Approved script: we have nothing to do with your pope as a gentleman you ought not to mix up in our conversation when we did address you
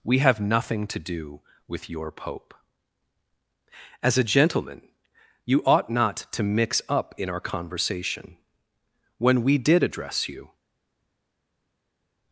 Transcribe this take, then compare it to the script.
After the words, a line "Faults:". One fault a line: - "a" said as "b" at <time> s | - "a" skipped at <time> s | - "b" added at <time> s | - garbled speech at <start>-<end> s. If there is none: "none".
we have nothing to do with your pope as a gentleman you ought not to mix up in our conversation when we did address you
Faults:
none